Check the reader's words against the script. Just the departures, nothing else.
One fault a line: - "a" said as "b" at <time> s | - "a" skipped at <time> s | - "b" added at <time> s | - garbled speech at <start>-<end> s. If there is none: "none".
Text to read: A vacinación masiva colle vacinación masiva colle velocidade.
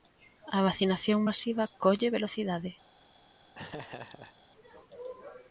- "vacinación masiva colle" skipped at 2.1 s